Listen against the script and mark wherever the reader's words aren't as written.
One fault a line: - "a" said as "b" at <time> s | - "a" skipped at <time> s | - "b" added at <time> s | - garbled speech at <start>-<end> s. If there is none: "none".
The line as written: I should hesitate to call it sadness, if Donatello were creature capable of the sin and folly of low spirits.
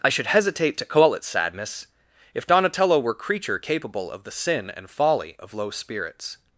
none